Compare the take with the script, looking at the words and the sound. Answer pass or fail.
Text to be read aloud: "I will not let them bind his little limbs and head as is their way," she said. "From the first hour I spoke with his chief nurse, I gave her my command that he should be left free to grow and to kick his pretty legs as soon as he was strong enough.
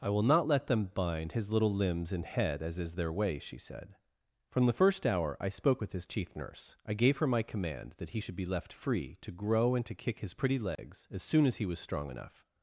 fail